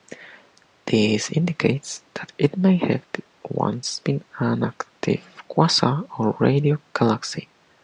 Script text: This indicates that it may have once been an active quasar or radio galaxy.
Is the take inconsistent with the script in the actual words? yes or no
no